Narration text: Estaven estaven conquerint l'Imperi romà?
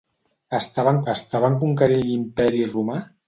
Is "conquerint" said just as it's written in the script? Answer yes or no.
yes